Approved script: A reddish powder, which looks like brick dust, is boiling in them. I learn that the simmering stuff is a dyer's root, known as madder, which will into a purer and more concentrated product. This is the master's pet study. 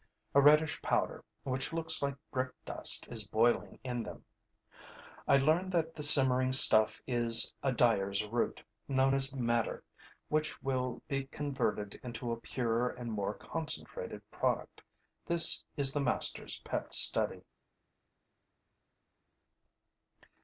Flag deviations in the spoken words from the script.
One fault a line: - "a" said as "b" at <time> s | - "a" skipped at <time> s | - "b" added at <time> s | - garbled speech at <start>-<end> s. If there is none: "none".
- "be converted" added at 11.1 s